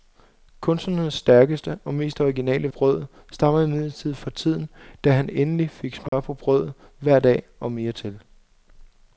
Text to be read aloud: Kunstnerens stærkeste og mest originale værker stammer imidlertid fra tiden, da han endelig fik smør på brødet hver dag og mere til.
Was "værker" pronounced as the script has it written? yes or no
no